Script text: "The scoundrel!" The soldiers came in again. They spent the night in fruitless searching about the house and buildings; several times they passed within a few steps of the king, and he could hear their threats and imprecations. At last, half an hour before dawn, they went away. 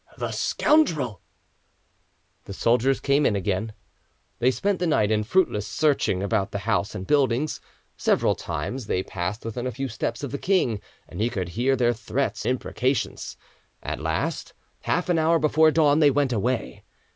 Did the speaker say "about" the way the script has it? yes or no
yes